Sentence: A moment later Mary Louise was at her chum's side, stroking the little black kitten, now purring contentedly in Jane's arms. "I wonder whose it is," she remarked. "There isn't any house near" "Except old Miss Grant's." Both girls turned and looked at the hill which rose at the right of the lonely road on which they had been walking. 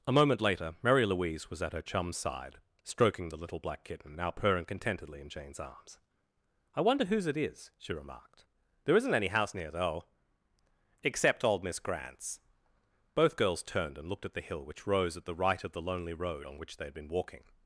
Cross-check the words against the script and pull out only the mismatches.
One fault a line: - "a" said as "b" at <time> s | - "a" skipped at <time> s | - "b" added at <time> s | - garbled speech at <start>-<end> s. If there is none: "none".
- "though" added at 9.7 s